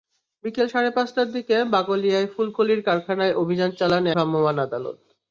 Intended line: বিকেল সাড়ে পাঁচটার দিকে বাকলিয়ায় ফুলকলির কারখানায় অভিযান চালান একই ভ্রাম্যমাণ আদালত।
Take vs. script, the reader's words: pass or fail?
fail